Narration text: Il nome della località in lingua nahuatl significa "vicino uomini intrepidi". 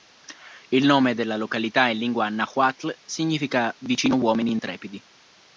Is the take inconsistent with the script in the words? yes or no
no